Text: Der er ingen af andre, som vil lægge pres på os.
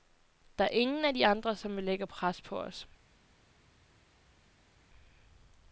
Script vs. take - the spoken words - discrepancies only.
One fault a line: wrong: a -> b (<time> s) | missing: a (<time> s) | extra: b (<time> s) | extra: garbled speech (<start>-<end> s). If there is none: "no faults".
extra: de (1.1 s)